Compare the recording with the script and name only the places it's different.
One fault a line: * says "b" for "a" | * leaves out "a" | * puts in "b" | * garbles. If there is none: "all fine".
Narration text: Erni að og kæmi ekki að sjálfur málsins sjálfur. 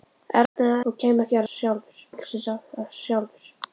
all fine